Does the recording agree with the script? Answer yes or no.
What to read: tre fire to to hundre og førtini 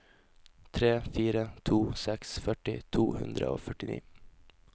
no